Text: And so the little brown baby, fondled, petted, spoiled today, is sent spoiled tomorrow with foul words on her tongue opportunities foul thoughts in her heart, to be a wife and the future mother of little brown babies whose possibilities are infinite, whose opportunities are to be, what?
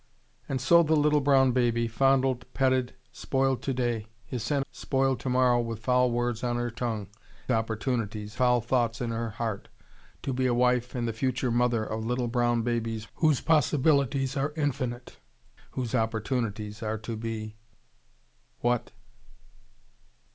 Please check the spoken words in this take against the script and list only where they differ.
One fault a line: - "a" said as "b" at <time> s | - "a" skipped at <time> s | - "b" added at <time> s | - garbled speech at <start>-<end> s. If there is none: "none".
none